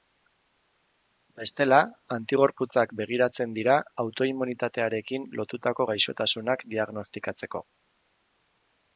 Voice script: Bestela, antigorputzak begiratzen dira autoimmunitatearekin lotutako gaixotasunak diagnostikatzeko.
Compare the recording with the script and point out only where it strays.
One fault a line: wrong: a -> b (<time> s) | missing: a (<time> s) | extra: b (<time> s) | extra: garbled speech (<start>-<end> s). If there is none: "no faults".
no faults